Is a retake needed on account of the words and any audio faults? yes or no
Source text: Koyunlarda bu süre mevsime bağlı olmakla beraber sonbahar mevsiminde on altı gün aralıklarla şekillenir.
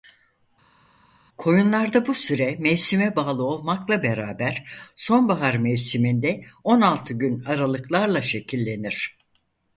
no